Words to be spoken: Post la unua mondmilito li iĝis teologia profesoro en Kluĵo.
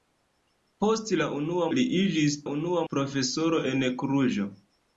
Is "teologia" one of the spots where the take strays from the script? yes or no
yes